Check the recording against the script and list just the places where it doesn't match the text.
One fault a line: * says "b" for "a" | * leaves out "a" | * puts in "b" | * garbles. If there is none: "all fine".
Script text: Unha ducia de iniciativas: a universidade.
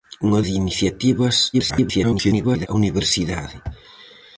* leaves out "ducia"
* garbles